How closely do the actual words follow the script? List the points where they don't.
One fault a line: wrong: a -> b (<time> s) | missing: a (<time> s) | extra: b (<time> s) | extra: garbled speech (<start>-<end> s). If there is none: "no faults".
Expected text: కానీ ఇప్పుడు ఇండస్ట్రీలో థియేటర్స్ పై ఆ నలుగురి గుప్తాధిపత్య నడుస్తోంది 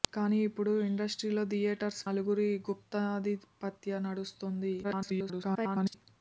missing: పై ఆ (2.0 s)
extra: garbled speech (4.8-5.9 s)